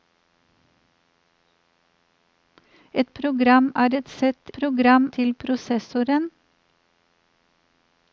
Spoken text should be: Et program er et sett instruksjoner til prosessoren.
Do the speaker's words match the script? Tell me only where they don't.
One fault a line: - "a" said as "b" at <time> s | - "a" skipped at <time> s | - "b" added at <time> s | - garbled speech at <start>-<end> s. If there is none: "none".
- "instruksjoner" said as "program" at 4.6 s